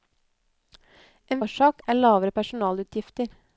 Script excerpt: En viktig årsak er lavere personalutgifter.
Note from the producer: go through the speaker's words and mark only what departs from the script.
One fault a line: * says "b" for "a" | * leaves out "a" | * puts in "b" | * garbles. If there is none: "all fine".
* leaves out "viktig"